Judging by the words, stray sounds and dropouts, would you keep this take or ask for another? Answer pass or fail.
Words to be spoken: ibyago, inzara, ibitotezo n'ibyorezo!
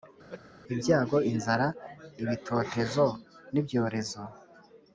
fail